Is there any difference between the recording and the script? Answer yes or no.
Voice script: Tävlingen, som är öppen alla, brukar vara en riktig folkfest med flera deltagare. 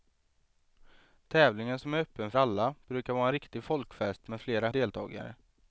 no